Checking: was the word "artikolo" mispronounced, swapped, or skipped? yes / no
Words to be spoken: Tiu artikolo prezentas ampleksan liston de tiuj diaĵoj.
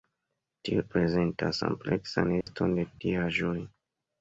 yes